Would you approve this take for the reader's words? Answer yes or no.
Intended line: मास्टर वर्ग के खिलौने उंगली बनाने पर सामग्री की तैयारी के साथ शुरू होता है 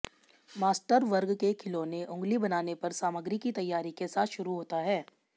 yes